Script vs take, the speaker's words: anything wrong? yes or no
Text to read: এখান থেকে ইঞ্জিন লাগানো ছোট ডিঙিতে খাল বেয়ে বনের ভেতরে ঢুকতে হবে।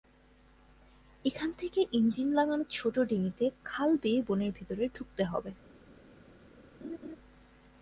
no